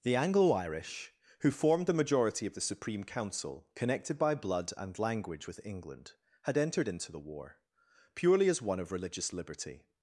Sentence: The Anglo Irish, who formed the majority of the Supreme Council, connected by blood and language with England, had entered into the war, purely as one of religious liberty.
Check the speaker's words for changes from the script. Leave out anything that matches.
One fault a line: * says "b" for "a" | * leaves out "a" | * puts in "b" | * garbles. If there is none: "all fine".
all fine